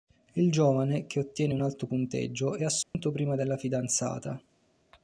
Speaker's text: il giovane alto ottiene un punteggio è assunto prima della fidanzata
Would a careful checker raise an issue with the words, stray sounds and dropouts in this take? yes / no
yes